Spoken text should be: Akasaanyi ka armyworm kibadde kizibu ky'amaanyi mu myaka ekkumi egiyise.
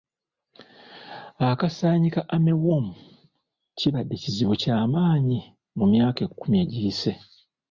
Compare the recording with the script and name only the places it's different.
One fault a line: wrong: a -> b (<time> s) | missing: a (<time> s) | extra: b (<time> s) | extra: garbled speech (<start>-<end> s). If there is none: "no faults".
no faults